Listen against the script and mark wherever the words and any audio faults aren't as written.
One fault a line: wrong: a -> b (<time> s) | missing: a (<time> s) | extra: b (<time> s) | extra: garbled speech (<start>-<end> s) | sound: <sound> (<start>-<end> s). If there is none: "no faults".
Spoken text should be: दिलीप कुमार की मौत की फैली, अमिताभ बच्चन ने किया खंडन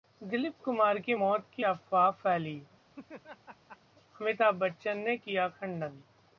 extra: अफवाह (1.6 s)
sound: laugh (2.9-3.8 s)